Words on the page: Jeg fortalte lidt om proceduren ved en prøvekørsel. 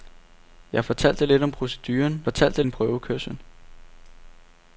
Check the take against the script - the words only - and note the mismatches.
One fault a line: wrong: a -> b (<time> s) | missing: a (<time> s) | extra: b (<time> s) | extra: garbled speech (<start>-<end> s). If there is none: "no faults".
wrong: ved -> fortalte (2.2 s)